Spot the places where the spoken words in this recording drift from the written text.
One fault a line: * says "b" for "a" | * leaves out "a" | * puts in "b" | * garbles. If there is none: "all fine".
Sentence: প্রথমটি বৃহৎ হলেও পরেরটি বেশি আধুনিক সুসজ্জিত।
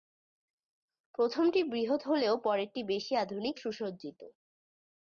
all fine